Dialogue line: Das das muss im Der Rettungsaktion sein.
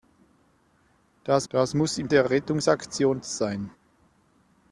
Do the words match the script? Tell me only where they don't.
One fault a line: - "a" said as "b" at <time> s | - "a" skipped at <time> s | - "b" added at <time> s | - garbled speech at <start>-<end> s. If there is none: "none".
none